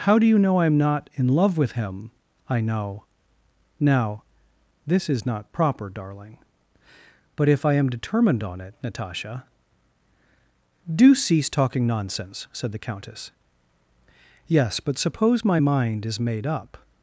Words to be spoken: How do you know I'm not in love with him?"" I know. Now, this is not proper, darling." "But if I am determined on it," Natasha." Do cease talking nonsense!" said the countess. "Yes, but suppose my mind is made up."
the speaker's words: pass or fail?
pass